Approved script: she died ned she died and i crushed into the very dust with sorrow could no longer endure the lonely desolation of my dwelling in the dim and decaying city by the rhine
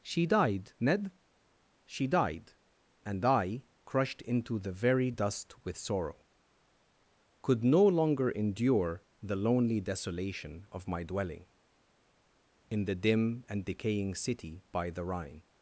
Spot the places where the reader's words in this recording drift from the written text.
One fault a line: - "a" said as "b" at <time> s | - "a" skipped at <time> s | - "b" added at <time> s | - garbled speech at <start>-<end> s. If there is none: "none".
none